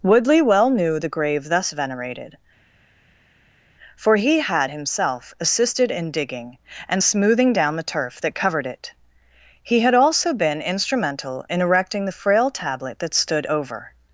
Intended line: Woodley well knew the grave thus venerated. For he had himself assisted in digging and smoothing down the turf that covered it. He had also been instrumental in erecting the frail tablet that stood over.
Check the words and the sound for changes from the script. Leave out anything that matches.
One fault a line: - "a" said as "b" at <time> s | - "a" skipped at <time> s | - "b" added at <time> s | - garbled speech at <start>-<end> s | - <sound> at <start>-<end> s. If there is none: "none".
none